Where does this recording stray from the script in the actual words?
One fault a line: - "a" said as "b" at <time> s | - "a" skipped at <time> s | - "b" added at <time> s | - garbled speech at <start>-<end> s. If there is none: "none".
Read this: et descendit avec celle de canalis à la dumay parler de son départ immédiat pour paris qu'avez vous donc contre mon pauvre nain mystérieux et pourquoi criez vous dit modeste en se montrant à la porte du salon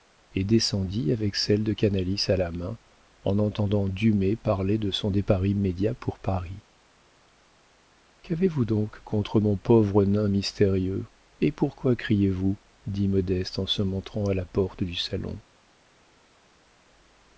- "main en entendant" added at 2.5 s